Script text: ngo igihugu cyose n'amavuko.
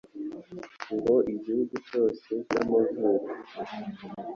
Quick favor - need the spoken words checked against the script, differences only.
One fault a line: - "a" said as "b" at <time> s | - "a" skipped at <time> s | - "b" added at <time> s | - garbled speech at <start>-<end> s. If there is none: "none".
none